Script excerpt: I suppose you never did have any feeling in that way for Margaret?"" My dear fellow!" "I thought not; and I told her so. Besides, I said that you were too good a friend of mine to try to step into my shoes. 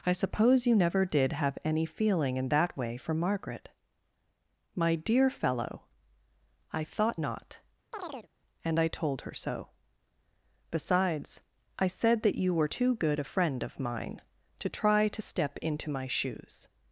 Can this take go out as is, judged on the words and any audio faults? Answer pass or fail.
fail